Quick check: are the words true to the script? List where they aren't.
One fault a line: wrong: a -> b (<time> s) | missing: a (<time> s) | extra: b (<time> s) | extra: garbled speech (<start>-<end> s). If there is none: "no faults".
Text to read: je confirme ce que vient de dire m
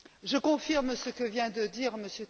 no faults